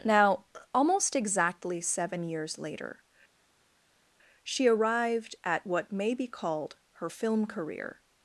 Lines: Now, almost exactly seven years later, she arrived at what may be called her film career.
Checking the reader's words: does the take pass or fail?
pass